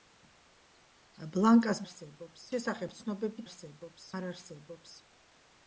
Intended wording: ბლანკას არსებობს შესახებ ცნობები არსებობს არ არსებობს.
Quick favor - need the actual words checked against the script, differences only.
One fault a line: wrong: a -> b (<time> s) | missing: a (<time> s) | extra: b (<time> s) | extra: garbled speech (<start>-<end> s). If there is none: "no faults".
no faults